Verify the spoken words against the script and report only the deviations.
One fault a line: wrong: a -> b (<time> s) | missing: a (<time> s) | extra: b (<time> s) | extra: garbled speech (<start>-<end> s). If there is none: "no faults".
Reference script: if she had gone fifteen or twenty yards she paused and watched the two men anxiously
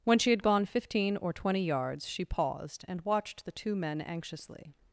wrong: if -> when (0.0 s)